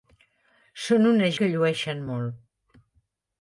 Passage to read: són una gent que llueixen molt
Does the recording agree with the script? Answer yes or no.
no